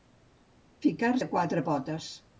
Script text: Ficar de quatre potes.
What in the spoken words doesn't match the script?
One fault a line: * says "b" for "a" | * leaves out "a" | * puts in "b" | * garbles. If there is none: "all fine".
all fine